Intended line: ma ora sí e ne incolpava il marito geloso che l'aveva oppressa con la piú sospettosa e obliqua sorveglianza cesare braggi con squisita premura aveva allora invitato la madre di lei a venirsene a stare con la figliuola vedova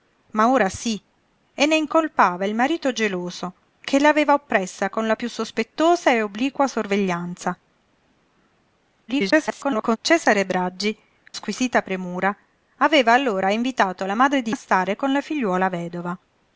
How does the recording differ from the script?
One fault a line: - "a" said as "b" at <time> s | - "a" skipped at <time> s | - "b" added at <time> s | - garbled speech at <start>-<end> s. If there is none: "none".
- garbled speech at 9.1-10.0 s
- "con" skipped at 11.0 s
- "lei a venirsene" skipped at 14.5 s